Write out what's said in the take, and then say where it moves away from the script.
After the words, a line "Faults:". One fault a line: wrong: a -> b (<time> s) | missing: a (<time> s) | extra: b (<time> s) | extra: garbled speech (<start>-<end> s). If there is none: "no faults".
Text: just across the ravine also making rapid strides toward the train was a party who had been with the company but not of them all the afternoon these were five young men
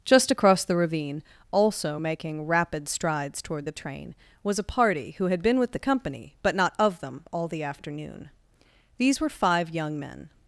just across the ravine also making rapid strides toward the train was a party who had been with the company but not of them all the afternoon these were five young men
Faults:
no faults